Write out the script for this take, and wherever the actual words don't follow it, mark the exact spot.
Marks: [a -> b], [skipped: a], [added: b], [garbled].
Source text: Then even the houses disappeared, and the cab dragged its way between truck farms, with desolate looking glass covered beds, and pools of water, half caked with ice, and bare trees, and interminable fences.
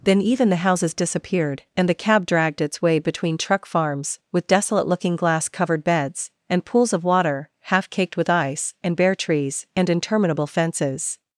Then even the houses disappeared, and the cab dragged its way between truck farms, with desolate looking glass covered beds, and pools of water, half caked with ice, and bare trees, and interminable fences.